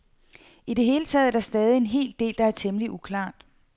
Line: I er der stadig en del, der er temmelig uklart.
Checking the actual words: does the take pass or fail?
fail